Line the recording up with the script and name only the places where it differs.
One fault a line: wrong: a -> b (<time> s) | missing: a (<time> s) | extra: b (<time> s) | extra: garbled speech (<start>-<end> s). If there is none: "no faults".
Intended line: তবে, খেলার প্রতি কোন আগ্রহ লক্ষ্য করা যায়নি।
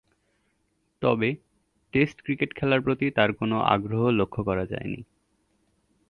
extra: টেস্ট ক্রিকেট (1.9 s)
extra: তার (3.1 s)